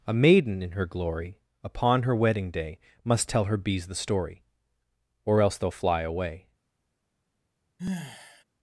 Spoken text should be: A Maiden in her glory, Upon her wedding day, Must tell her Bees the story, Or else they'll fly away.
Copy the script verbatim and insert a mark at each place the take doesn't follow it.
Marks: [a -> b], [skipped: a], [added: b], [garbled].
A Maiden in her glory, Upon her wedding day, Must tell her Bees the story, Or else they'll fly away.